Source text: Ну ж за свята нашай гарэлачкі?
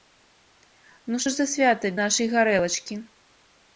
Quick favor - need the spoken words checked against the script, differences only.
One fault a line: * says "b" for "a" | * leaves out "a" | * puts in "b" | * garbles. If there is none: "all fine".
all fine